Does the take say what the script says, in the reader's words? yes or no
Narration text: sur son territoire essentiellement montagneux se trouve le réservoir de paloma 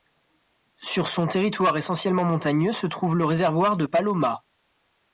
yes